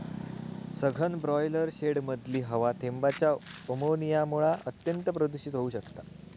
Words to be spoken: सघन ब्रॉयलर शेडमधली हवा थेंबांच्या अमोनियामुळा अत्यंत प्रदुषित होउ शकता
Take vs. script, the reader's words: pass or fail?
pass